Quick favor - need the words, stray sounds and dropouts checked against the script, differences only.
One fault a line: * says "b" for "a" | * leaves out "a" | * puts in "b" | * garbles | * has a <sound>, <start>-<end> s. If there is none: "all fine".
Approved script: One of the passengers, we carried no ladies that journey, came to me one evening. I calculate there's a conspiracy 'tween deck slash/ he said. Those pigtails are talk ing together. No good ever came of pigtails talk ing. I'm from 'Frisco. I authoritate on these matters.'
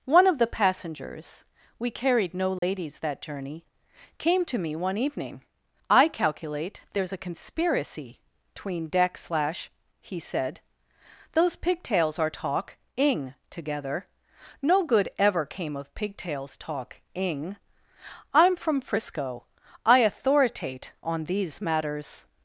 * has a dropout, 2.6-2.6 s